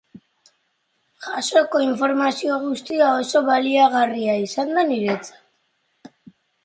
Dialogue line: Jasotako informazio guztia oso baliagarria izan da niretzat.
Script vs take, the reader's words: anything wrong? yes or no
no